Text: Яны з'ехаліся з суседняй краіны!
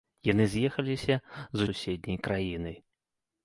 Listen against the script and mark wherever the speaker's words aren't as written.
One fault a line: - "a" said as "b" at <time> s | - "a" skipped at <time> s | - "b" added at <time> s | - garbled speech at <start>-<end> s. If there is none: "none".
none